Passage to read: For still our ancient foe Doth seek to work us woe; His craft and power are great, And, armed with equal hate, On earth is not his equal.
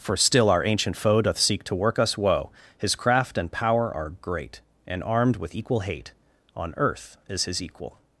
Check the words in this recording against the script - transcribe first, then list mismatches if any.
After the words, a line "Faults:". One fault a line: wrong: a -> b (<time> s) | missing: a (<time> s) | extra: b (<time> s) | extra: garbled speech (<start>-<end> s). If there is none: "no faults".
For still our ancient foe Doth seek to work us woe; His craft and power are great, And, armed with equal hate, On earth is his equal.
Faults:
missing: not (7.5 s)